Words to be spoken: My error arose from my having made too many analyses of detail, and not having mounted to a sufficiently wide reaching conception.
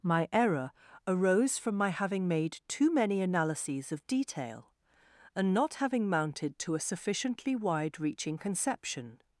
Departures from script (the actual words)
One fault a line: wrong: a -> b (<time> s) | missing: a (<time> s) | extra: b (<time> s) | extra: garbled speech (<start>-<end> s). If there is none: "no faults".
no faults